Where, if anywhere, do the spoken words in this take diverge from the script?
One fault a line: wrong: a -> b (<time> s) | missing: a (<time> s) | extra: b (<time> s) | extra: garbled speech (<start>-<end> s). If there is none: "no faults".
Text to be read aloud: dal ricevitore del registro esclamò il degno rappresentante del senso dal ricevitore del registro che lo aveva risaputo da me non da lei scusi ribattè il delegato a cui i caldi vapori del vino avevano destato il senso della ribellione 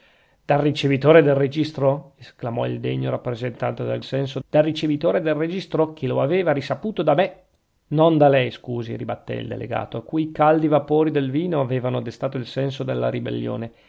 no faults